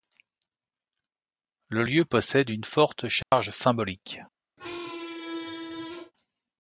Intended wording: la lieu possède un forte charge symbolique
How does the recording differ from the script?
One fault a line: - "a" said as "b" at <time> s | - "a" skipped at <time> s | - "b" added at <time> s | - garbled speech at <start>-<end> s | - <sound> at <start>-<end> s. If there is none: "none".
- "la" said as "le" at 1.7 s
- "un" said as "une" at 2.5 s
- dropout at 3.2-3.3 s
- squeak at 4.6-6.1 s